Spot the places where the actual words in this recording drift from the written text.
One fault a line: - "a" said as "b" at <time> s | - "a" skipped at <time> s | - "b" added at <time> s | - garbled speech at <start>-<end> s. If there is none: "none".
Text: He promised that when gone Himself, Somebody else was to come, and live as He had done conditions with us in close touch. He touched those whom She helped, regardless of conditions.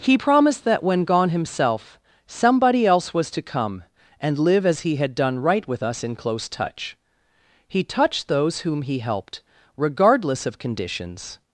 - "conditions" said as "right" at 5.4 s
- "She" said as "He" at 8.8 s